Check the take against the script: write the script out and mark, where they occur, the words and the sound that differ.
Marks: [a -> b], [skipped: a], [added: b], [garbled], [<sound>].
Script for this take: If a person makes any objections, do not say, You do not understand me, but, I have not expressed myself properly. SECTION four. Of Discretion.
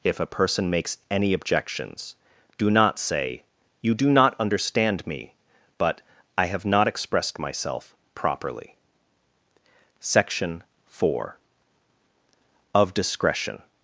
If a person makes any objections, do not say, You do not understand me, but, I have not expressed myself properly. SECTION four. Of Discretion.